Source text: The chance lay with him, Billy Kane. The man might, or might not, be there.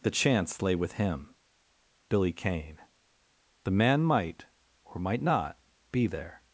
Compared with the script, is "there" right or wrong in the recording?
right